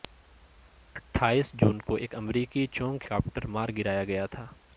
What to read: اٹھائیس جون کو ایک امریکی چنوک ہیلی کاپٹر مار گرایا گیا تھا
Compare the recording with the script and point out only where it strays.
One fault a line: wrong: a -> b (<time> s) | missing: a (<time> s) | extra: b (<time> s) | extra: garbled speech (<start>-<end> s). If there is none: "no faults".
missing: ہیلی (3.0 s)